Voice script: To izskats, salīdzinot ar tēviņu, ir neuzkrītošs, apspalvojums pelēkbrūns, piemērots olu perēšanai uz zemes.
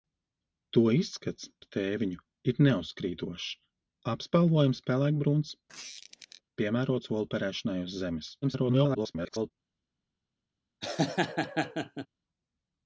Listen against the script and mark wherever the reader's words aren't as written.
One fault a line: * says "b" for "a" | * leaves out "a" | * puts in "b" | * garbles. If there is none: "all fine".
* leaves out "salīdzinot"
* garbles